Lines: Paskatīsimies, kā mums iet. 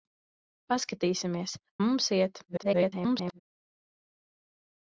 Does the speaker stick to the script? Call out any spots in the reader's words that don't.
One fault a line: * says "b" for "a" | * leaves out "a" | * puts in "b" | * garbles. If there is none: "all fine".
* leaves out "kā"
* garbles